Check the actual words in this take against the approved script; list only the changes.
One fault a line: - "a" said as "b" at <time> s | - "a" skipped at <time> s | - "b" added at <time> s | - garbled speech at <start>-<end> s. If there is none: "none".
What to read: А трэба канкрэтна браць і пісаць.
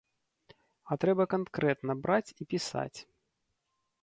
none